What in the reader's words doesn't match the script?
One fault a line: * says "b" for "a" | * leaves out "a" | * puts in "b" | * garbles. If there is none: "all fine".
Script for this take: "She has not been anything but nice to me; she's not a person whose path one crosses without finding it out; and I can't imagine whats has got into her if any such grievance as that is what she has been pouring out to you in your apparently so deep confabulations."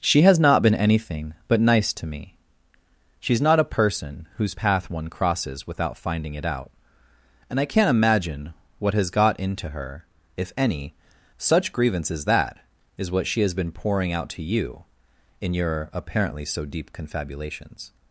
* says "what" for "whats"